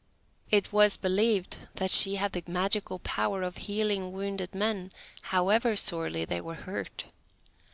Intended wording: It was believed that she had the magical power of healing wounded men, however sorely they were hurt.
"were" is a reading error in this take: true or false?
false